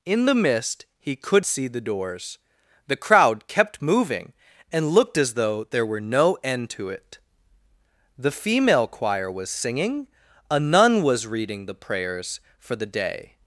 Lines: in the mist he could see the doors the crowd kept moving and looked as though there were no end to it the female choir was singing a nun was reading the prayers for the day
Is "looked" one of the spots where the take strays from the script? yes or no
no